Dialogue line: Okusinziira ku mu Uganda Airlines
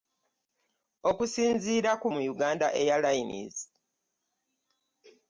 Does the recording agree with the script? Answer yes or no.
yes